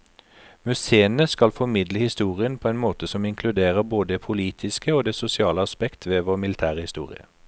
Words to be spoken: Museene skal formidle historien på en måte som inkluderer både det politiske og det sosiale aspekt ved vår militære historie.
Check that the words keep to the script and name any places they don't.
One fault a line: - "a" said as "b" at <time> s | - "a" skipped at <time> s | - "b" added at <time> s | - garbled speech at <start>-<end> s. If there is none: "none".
none